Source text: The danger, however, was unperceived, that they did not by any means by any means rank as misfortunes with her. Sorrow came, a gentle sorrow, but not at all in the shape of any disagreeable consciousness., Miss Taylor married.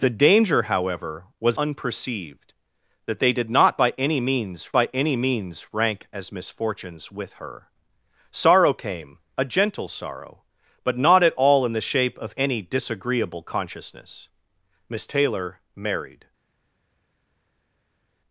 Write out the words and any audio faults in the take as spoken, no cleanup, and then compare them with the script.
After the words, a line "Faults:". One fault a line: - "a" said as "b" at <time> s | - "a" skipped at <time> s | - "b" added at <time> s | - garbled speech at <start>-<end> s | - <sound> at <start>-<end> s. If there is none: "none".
The danger, however, was unperceived, that they did not by any means by any means rank as misfortunes with her. Sorrow came, a gentle sorrow, but not at all in the shape of any disagreeable consciousness., Miss Taylor married.
Faults:
none